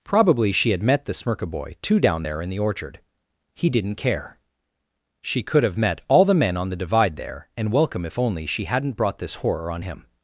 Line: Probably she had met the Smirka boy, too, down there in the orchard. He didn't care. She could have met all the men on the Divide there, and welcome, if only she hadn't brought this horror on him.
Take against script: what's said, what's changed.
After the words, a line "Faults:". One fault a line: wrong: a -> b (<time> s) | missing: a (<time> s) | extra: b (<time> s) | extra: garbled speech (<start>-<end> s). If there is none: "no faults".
Probably she had met the Smirka boy, too, down there in the orchard. He didn't care. She could have met all the men on the Divide there, and welcome, if only she hadn't brought this horror on him.
Faults:
no faults